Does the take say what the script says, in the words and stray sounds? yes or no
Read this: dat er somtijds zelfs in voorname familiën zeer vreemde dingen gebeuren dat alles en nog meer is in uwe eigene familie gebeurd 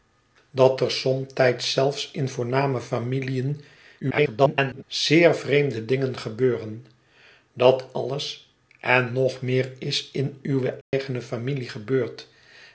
no